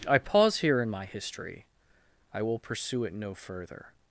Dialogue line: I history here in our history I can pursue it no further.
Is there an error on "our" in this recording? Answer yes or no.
yes